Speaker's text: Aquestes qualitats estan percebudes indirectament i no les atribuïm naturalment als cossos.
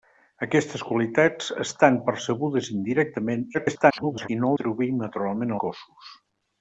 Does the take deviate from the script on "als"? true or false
true